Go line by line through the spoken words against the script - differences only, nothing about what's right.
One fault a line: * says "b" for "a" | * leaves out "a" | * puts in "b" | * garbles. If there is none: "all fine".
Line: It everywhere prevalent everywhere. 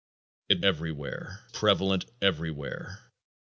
all fine